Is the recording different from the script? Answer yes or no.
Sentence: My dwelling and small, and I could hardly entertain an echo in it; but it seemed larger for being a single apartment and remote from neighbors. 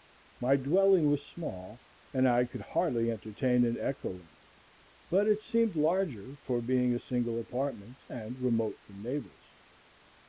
yes